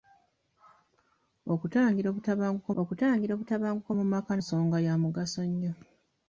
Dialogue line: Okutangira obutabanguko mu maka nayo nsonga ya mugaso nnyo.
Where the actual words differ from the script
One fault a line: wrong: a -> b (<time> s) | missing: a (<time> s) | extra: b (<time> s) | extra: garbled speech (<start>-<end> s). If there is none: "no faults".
extra: okutangira obutabanguko (2.8 s)
missing: nayo (4.3 s)